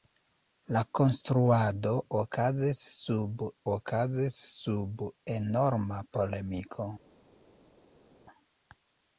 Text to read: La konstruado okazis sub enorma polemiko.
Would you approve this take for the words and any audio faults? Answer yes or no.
no